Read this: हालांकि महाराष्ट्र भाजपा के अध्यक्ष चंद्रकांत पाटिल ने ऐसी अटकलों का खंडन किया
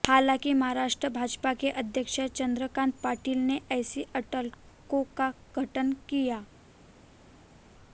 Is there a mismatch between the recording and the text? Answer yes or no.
no